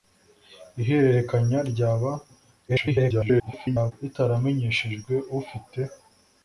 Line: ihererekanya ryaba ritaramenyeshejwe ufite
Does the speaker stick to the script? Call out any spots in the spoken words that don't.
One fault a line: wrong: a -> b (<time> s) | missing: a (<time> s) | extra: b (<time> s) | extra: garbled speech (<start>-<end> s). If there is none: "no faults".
extra: garbled speech (2.7-3.9 s)